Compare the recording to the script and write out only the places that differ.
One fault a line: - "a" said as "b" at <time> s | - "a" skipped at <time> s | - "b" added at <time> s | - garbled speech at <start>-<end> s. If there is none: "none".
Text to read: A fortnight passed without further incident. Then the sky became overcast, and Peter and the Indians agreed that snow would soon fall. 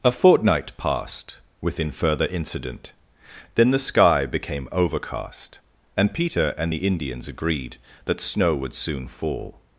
- "without" said as "within" at 1.6 s